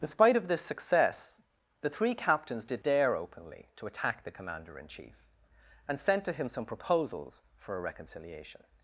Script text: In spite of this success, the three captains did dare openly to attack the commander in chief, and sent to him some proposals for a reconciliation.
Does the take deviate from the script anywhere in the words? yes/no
no